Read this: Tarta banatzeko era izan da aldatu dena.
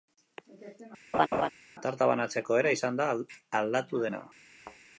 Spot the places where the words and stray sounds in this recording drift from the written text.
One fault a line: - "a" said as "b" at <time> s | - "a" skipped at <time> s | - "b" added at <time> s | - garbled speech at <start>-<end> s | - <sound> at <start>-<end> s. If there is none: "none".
- laugh at 1.1-1.5 s
- thud at 4.6-4.8 s